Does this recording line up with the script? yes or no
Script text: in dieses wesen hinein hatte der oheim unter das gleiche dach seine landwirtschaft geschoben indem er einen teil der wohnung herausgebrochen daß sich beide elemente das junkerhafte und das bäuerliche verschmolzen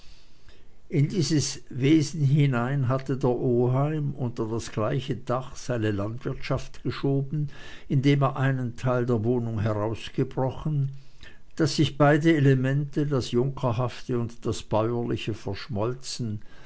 yes